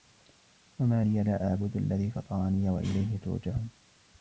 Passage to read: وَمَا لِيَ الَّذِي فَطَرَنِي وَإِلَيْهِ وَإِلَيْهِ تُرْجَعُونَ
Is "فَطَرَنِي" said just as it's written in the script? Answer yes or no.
yes